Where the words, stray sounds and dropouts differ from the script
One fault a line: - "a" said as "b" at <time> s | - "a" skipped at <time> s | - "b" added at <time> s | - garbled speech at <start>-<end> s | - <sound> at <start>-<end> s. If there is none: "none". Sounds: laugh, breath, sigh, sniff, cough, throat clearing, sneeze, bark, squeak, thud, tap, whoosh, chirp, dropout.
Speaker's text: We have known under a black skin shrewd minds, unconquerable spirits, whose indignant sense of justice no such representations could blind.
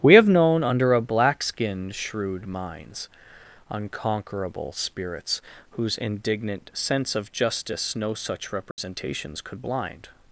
- dropout at 8.7-8.8 s